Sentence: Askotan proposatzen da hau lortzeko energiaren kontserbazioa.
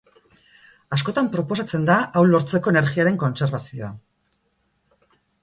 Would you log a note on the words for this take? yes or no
no